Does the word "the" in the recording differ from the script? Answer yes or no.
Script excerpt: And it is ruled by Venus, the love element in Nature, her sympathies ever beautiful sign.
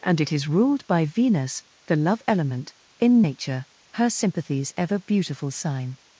no